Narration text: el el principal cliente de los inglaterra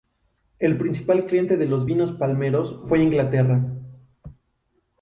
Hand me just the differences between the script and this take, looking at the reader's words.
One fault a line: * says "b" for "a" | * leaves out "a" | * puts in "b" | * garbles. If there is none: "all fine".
* leaves out "el"
* puts in "vinos palmeros fue"